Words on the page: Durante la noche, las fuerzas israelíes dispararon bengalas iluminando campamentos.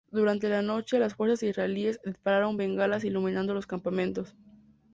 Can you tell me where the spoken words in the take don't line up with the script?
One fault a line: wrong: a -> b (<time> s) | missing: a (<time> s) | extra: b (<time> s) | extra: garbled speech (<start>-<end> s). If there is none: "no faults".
extra: los (3.5 s)